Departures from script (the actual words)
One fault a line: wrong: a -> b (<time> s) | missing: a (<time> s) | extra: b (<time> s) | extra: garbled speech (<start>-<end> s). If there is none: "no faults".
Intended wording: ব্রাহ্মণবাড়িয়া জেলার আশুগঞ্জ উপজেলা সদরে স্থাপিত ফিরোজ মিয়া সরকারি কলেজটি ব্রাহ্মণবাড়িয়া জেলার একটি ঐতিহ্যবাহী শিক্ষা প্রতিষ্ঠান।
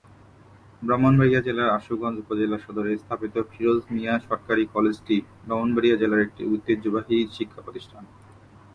no faults